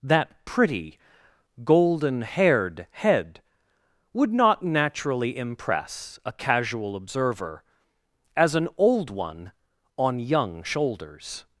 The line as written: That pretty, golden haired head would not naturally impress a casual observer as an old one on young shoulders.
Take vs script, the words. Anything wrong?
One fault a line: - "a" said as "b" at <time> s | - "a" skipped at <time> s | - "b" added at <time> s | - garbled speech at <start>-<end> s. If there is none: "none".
none